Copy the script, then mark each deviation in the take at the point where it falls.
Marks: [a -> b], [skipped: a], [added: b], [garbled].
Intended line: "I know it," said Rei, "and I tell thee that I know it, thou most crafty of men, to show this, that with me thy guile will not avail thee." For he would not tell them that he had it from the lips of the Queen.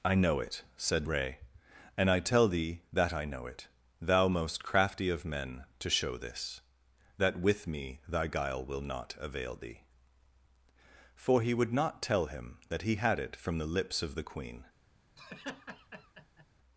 "I know it," said Rei, "and I tell thee that I know it, thou most crafty of men, to show this, that with me thy guile will not avail thee." For he would not tell [them -> him] that he had it from the lips of the Queen.